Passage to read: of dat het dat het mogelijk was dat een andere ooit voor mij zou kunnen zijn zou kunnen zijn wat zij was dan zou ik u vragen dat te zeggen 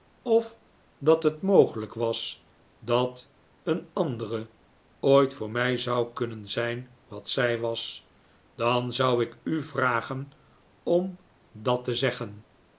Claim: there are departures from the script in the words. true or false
true